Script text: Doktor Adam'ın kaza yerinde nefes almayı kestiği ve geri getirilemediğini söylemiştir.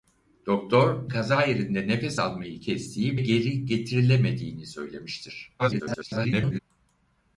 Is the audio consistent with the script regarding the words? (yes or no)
no